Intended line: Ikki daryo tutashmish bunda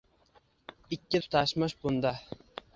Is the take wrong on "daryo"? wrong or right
wrong